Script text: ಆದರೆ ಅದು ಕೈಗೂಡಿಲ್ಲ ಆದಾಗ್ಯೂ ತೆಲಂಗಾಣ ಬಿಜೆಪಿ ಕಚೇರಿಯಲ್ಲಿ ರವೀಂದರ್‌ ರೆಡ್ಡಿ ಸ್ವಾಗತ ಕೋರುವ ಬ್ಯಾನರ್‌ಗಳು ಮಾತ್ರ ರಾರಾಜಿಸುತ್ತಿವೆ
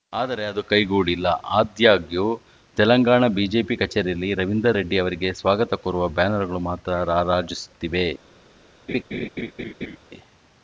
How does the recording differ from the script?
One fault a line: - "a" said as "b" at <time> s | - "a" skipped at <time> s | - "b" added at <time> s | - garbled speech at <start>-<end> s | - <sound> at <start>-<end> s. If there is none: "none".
- "ಅವರಿಗೆ" added at 5.0 s
- laugh at 8.9-10.0 s